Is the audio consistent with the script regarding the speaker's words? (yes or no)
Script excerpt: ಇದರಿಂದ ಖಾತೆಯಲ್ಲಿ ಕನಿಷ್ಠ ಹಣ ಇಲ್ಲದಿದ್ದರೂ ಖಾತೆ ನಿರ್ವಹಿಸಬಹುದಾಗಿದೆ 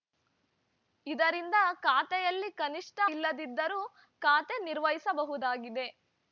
no